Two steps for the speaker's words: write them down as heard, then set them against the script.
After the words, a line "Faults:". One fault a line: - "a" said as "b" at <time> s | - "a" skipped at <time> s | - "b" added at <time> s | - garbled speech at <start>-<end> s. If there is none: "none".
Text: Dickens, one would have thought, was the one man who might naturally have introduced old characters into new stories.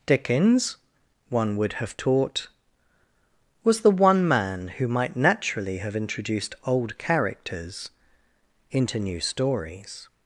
Dickens, one would have taught, was the one man who might naturally have introduced old characters into new stories.
Faults:
- "thought" said as "taught" at 1.9 s